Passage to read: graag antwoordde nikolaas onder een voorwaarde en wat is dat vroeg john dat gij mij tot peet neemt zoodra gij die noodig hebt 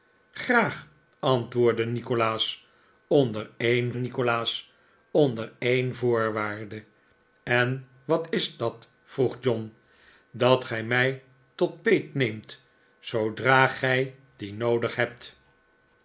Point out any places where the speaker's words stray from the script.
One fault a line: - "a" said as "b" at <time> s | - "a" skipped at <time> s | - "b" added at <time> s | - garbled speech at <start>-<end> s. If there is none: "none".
- "nikolaas onder een" added at 3.9 s